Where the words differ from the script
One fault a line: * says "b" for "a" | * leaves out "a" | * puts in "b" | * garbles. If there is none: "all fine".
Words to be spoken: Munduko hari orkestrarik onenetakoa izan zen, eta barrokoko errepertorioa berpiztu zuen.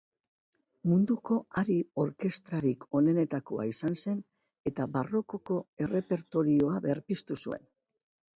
all fine